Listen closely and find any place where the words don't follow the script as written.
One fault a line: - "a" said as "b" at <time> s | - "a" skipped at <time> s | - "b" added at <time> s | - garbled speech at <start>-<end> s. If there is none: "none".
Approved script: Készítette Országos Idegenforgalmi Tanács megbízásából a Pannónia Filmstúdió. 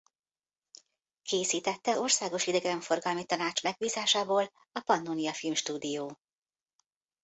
none